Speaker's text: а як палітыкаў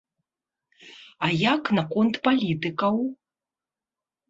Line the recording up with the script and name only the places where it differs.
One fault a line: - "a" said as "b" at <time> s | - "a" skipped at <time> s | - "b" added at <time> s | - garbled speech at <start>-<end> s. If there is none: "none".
- "наконт" added at 1.8 s